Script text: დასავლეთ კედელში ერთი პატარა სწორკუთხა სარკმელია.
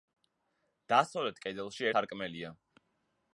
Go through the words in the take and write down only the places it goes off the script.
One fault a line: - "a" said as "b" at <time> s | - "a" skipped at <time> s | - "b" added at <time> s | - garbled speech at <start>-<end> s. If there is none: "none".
- "ერთი პატარა სწორკუთხა" skipped at 1.9 s